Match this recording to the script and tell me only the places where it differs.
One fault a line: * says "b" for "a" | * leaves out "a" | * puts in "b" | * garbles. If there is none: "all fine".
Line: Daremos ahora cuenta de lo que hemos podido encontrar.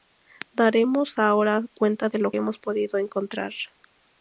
* leaves out "que"